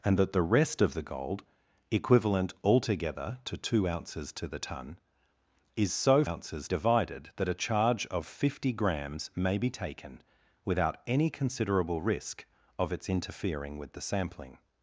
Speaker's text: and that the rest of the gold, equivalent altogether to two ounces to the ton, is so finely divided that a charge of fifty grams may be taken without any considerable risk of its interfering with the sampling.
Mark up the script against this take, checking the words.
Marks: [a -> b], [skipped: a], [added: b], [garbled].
and that the rest of the gold, equivalent altogether to two ounces to the ton, is so [finely -> ounces] divided that a charge of fifty grams may be taken without any considerable risk of its interfering with the sampling.